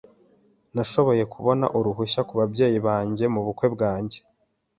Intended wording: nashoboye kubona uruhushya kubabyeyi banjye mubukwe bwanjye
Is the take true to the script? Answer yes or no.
yes